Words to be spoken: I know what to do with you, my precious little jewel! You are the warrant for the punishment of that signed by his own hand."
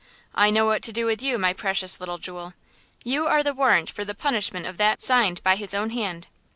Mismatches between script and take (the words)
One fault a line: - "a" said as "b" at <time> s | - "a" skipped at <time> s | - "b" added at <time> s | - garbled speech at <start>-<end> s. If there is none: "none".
none